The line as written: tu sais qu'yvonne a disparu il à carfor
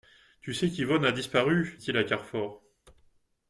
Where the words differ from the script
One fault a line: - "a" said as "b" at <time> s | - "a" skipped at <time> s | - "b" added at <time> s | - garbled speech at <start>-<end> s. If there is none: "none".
none